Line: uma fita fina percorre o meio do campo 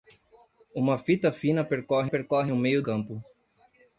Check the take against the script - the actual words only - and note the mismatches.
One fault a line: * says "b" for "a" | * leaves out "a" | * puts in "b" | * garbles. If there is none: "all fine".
* puts in "percorre"
* leaves out "do"